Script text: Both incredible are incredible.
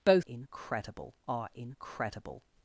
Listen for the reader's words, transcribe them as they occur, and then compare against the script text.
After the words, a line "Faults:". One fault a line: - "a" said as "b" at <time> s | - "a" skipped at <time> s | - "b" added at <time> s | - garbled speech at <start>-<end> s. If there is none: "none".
Both incredible are incredible.
Faults:
none